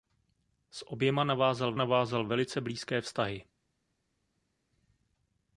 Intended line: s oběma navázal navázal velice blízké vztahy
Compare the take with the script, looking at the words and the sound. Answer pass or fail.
pass